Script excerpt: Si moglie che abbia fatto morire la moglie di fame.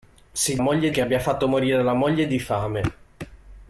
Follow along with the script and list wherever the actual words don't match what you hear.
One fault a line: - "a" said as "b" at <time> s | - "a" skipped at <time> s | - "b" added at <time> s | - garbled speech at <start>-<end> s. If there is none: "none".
none